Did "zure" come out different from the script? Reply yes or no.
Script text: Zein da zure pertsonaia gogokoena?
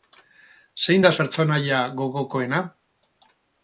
yes